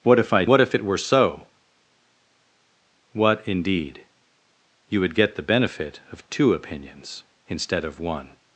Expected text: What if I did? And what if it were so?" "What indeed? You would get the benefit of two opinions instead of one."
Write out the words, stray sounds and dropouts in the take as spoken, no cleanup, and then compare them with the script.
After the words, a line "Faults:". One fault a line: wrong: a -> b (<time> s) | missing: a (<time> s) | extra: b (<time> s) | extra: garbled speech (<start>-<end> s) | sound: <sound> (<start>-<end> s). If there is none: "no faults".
What if I what if it were so?" "What indeed? You would get the benefit of two opinions instead of one."
Faults:
missing: did And (0.5 s)